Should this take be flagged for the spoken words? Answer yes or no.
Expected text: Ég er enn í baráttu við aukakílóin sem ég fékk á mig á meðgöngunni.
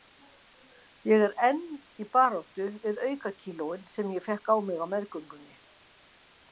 no